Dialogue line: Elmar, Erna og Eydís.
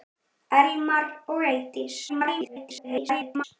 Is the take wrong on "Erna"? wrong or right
wrong